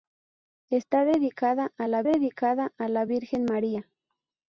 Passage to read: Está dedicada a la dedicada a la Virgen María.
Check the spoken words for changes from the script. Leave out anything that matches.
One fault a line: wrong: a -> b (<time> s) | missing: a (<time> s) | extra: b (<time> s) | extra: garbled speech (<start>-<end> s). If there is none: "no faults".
no faults